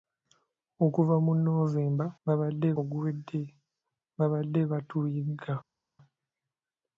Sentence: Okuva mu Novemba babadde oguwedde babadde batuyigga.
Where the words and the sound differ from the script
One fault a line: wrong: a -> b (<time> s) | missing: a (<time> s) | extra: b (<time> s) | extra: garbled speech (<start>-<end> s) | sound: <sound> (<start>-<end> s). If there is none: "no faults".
no faults